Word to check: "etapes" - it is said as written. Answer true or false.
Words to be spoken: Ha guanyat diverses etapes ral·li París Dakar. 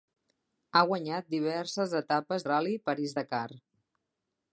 true